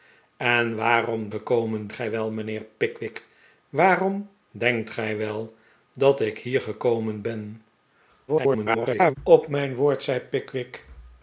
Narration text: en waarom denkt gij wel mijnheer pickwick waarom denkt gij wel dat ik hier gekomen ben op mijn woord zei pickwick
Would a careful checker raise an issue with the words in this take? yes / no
yes